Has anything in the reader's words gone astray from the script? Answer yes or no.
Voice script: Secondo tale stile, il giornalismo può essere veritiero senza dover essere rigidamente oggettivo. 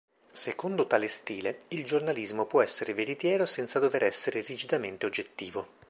no